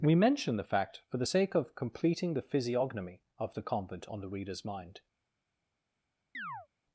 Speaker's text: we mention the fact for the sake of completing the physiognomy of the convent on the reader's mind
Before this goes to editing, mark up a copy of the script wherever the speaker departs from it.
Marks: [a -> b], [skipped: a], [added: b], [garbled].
we mention the fact for the sake of completing the physiognomy of the convent on the reader's mind